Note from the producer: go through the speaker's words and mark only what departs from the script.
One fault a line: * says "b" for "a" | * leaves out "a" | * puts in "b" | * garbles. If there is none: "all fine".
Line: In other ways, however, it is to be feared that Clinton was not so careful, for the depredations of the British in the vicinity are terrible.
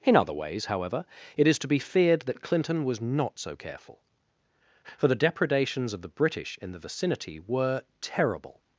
* says "were" for "are"